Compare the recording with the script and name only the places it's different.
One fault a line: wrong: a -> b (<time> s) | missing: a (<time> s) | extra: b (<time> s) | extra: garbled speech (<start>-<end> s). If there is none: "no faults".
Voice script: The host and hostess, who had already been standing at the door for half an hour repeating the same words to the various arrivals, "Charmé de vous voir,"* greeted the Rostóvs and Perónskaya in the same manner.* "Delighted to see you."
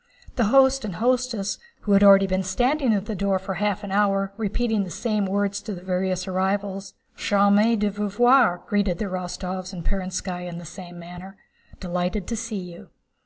no faults